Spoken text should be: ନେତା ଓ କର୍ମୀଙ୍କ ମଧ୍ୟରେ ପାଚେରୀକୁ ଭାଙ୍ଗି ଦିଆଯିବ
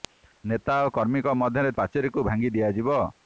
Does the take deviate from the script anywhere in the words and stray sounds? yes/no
no